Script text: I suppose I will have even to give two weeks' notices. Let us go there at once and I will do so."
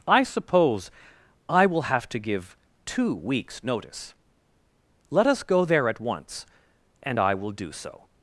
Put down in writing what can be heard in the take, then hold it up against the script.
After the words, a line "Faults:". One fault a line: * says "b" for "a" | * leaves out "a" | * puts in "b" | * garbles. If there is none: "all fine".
I suppose I will have to give two weeks' notice. Let us go there at once and I will do so."
Faults:
* leaves out "even"
* says "notice" for "notices"